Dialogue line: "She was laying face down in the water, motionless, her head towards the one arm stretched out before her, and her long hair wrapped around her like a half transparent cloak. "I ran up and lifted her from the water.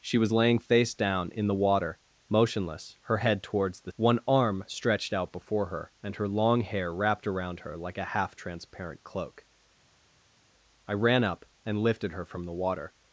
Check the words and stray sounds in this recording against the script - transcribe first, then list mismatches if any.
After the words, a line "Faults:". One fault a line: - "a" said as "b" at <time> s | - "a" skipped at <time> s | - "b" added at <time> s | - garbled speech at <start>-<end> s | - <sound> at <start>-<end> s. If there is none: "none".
"She was laying face down in the water, motionless, her head towards the one arm stretched out before her, and her long hair wrapped around her like a half transparent cloak. "I ran up and lifted her from the water.
Faults:
none